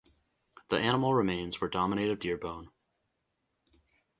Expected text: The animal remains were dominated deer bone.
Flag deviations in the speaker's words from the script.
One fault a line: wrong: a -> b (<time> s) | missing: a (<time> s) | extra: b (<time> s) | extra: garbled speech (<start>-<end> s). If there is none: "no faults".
no faults